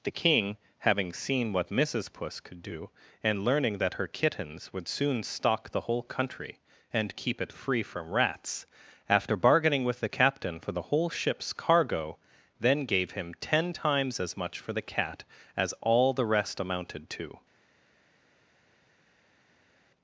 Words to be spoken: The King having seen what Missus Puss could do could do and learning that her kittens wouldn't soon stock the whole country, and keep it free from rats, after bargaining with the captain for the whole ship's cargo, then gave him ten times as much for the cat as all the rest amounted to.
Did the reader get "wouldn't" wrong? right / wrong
wrong